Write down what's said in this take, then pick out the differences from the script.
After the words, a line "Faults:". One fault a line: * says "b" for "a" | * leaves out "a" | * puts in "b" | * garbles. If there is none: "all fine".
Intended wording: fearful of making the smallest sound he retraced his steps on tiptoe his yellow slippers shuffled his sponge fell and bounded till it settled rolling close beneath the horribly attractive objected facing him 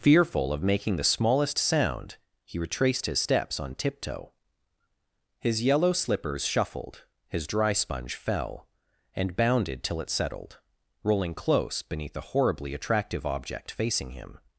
fearful of making the smallest sound he retraced his steps on tiptoe his yellow slippers shuffled his dry sponge fell and bounded till it settled rolling close beneath the horribly attractive object facing him
Faults:
* puts in "dry"
* says "object" for "objected"